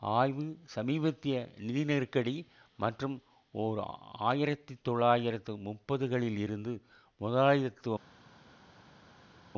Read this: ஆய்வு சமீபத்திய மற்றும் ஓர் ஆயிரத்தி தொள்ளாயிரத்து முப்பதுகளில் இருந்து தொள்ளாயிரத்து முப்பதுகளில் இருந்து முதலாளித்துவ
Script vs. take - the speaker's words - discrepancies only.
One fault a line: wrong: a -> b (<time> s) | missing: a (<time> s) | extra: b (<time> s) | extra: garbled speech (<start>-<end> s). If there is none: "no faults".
extra: நிதி நெருக்கடி (1.6 s)
missing: தொள்ளாயிரத்து முப்பதுகளில் இருந்து (6.7 s)